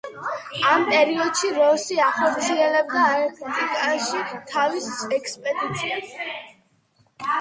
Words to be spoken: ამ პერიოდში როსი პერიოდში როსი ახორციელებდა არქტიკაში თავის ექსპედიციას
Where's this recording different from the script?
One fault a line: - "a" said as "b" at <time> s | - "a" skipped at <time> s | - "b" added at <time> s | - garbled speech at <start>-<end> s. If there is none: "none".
- "პერიოდში როსი" skipped at 2.0 s